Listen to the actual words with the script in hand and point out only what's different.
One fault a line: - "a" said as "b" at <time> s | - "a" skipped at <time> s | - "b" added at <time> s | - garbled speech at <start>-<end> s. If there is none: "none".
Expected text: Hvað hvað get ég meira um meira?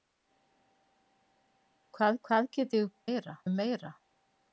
none